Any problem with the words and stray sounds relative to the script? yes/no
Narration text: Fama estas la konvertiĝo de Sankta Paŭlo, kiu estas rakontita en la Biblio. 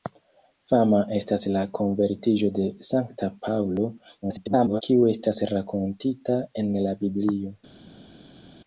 yes